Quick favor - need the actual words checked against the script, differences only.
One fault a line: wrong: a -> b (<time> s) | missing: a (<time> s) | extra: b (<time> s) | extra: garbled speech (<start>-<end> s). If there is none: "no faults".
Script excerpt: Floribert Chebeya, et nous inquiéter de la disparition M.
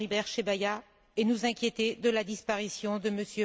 extra: de (3.0 s)